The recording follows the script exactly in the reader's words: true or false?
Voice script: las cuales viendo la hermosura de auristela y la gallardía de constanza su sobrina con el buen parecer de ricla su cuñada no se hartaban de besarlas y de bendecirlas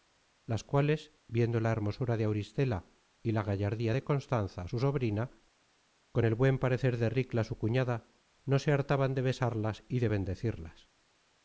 true